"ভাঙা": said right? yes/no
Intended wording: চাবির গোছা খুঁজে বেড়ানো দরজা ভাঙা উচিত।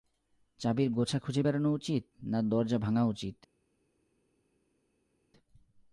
yes